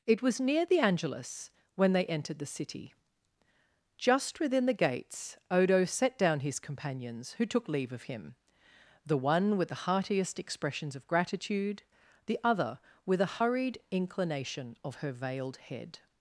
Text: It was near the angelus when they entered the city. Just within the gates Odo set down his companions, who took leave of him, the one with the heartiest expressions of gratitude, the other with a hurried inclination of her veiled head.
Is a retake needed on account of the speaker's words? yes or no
no